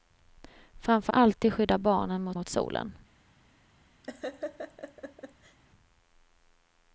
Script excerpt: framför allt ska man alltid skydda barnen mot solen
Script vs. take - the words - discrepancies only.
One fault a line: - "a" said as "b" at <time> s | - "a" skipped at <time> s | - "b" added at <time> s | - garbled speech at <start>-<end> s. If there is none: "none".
- "allt ska man" skipped at 1.1 s
- "mot" added at 2.3 s